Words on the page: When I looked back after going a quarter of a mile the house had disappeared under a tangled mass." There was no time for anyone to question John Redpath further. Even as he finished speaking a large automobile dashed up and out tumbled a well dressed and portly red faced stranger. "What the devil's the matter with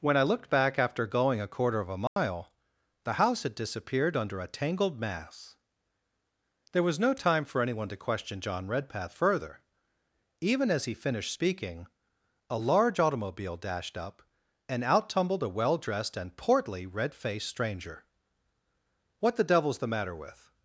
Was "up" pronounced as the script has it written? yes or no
yes